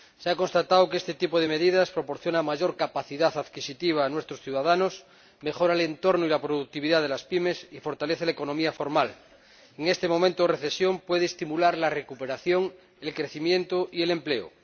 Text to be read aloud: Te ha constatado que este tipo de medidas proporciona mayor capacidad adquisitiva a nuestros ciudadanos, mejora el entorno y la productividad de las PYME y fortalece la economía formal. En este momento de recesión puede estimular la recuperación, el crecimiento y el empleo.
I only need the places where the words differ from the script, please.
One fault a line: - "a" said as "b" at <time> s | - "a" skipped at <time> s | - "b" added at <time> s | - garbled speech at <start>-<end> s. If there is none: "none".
- "Te" said as "Se" at 0.2 s